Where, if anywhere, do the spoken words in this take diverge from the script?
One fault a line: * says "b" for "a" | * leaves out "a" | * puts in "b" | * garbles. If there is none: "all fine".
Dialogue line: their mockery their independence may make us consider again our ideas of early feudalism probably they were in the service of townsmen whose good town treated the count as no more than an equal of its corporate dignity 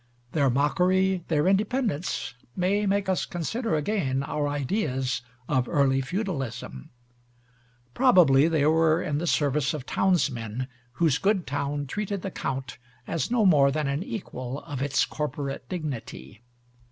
all fine